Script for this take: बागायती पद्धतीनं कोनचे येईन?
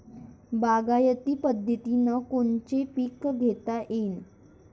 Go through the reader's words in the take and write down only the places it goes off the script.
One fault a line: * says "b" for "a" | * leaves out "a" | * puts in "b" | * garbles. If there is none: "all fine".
* puts in "पीक घेता"